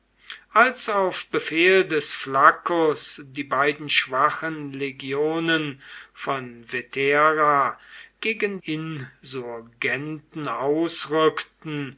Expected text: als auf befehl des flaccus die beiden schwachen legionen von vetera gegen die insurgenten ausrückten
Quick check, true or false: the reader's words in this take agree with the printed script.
false